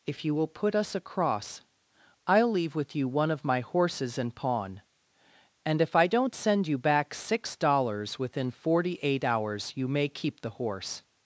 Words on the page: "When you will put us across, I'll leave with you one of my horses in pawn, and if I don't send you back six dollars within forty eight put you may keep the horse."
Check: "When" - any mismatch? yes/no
yes